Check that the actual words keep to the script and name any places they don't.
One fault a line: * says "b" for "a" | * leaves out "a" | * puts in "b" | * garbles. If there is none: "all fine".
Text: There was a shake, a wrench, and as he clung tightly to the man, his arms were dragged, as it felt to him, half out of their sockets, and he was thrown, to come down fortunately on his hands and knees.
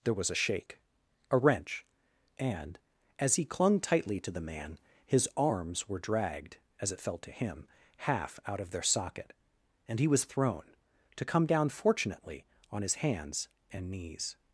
* says "socket" for "sockets"